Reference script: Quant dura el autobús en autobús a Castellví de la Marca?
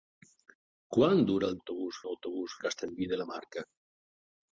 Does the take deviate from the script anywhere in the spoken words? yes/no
no